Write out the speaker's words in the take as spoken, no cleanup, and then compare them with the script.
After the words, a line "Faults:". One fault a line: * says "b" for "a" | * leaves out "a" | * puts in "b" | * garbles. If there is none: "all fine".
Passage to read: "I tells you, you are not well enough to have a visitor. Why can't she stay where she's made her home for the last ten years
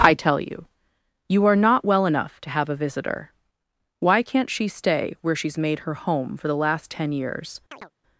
"I tell you, you are not well enough to have a visitor. Why can't she stay where she's made her home for the last ten years
Faults:
* says "tell" for "tells"